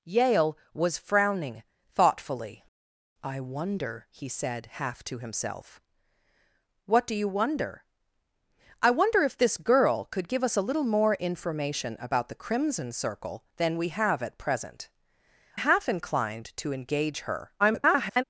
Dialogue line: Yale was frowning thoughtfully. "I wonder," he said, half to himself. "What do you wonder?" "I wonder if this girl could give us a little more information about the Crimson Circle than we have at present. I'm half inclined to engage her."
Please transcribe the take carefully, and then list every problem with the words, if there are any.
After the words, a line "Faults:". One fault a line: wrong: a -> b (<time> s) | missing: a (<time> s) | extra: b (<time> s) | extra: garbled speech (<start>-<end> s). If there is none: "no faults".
Yale was frowning thoughtfully. "I wonder," he said, half to himself. "What do you wonder?" "I wonder if this girl could give us a little more information about the Crimson Circle than we have at present. Half inclined to engage her." [garbled]
Faults:
missing: I'm (14.9 s)
extra: garbled speech (17.6-18.2 s)